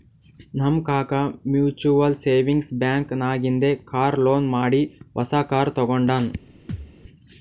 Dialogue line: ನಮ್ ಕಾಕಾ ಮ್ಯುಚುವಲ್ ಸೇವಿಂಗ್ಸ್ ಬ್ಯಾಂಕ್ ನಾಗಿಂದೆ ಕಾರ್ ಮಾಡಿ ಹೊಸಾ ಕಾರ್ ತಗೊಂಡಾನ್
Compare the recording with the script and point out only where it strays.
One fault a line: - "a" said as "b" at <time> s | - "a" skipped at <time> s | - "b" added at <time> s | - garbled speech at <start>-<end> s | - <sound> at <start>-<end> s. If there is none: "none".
- "ಲೋನ್" added at 4.2 s
- thud at 6.7-7.0 s